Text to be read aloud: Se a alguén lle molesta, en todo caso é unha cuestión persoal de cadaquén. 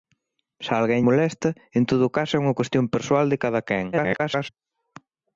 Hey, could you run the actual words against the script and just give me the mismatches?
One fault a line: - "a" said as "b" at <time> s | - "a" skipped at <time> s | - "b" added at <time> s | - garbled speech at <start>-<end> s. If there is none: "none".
- "lle" skipped at 1.1 s
- garbled speech at 3.9-4.5 s